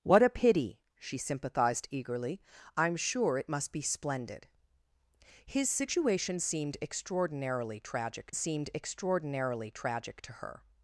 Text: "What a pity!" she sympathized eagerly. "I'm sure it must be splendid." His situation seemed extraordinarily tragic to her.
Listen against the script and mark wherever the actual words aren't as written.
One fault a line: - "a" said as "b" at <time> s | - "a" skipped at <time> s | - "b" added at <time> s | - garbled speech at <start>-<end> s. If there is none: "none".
- "seemed extraordinarily tragic" added at 8.3 s